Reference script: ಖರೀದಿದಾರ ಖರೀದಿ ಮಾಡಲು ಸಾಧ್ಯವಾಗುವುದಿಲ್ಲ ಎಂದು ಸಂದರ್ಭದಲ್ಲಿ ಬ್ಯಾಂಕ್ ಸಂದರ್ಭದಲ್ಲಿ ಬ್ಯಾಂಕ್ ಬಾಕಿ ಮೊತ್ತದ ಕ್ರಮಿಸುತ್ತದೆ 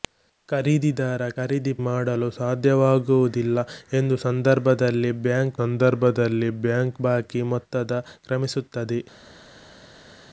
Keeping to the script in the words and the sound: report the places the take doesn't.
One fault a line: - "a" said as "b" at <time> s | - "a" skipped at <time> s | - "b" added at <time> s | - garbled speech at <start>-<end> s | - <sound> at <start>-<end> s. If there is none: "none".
none